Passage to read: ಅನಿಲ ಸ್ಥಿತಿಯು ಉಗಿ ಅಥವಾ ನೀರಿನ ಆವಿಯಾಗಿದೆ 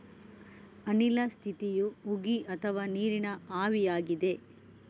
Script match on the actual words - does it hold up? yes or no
yes